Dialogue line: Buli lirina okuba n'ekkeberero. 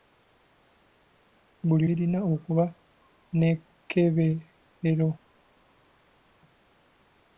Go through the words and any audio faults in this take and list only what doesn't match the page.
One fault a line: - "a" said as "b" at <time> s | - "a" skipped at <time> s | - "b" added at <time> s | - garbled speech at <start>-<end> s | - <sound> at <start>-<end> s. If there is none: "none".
none